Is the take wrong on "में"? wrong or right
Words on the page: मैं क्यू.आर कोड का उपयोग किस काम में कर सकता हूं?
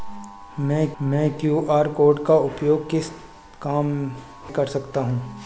wrong